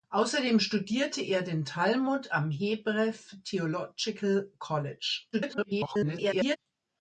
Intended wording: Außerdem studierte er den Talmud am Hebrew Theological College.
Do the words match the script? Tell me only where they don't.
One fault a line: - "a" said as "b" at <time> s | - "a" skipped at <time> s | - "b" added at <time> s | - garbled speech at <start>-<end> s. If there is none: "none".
- garbled speech at 5.3-6.6 s